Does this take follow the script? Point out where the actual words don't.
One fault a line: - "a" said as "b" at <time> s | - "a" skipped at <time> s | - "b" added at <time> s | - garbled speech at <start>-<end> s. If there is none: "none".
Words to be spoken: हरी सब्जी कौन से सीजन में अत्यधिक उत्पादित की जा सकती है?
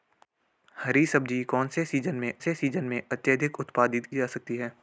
- "से सीजन में" added at 2.4 s
- "की" skipped at 4.1 s